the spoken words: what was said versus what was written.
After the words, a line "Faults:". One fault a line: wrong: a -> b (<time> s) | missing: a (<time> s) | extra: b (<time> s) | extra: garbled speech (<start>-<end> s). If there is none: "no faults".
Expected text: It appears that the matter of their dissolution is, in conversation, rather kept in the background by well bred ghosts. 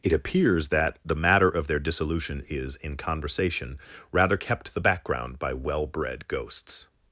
It appears that the matter of their dissolution is, in conversation, rather kept the background by well bred ghosts.
Faults:
missing: in (4.7 s)